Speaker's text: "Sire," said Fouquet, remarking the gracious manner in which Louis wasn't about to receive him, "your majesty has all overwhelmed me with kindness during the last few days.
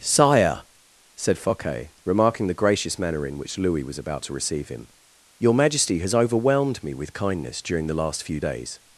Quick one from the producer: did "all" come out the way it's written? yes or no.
no